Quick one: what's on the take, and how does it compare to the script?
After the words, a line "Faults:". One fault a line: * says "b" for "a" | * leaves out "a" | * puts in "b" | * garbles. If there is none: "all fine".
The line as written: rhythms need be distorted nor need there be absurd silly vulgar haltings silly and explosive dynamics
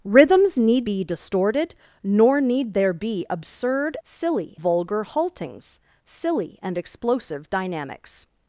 rhythms need be distorted nor need there be absurd silly vulgar haltings silly and explosive dynamics
Faults:
all fine